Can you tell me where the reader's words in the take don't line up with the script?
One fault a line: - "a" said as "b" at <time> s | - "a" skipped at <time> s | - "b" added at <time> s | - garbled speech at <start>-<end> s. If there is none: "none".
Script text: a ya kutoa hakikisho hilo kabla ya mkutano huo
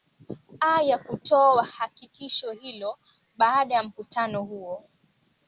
- "kabla" said as "baada" at 3.4 s